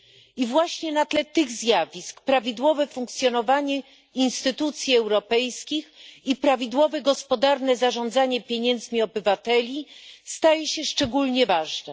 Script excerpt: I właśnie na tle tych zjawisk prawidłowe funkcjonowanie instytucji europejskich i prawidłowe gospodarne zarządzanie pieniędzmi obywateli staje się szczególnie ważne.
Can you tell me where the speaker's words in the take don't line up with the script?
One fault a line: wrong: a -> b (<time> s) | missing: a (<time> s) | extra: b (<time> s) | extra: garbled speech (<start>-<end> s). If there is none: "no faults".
no faults